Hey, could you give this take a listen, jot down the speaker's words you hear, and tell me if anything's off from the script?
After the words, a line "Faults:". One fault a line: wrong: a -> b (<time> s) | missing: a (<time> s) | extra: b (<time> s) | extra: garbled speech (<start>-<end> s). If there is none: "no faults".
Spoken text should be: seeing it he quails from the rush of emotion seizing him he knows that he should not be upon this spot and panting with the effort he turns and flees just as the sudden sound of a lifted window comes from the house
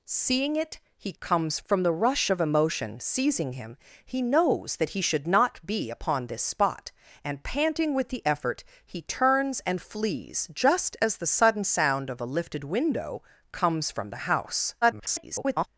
seeing it he comes from the rush of emotion seizing him he knows that he should not be upon this spot and panting with the effort he turns and flees just as the sudden sound of a lifted window comes from the house [garbled]
Faults:
wrong: quails -> comes (1.2 s)
extra: garbled speech (14.8-15.7 s)